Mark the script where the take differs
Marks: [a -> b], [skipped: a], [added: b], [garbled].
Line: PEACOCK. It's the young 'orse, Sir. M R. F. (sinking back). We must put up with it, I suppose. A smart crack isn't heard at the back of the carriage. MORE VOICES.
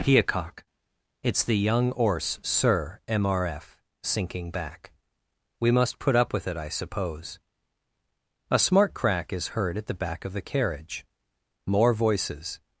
PEACOCK. It's the young 'orse, Sir. M R. F. (sinking back). We must put up with it, I suppose. A smart crack [isn't -> is] heard at the back of the carriage. MORE VOICES.